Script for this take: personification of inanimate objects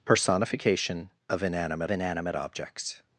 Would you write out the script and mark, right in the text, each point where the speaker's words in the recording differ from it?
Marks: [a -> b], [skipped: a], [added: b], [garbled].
personification of inanimate [added: inanimate] objects